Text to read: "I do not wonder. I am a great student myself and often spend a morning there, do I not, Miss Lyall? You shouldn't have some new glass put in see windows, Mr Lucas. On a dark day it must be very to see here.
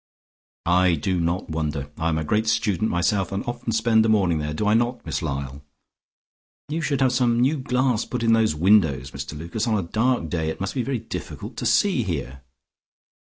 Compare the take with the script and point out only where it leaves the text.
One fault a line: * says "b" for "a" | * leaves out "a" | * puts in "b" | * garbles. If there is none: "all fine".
* says "should" for "shouldn't"
* says "those" for "see"
* puts in "difficult"